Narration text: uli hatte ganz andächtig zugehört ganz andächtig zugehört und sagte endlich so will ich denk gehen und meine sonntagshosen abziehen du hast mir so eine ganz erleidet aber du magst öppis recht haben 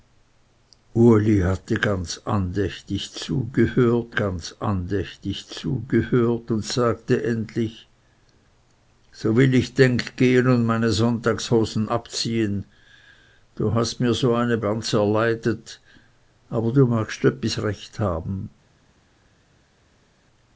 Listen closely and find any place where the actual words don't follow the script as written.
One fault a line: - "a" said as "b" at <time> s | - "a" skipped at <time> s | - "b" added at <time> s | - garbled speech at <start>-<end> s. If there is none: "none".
none